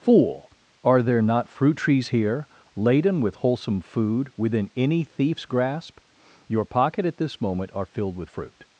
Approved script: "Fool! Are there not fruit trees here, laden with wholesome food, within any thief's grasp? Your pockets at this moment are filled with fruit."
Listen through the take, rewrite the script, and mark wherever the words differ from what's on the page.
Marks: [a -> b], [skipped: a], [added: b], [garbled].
"Fool! Are there not fruit trees here, laden with wholesome food, within any thief's grasp? Your [pockets -> pocket] at this moment are filled with fruit."